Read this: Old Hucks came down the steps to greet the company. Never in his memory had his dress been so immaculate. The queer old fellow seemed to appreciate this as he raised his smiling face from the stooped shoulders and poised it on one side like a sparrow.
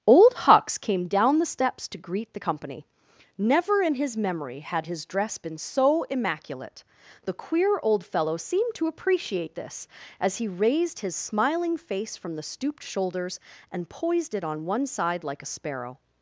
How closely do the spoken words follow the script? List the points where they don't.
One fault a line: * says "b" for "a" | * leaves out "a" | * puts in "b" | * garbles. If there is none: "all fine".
all fine